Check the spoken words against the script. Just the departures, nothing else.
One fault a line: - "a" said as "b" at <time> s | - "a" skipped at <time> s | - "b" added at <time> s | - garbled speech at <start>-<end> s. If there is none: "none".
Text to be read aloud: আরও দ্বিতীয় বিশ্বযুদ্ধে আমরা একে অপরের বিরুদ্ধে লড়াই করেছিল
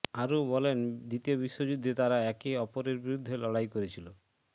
- "বলেন" added at 0.5 s
- "আমরা" said as "তারা" at 2.0 s